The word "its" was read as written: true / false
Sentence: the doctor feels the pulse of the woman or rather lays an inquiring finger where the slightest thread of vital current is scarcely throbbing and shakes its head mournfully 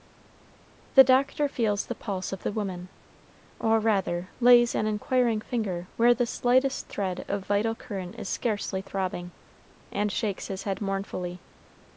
false